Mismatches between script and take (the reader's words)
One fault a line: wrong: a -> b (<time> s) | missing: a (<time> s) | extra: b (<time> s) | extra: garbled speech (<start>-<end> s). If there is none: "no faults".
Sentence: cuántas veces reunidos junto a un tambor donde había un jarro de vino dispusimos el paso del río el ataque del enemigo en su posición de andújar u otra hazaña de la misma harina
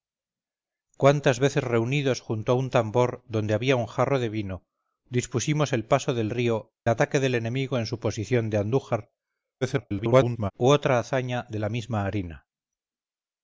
missing: el (6.7 s)
extra: garbled speech (9.6-10.5 s)